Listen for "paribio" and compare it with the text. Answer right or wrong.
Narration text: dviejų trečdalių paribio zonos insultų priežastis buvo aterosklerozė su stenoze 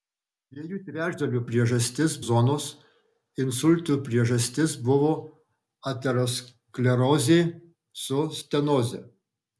wrong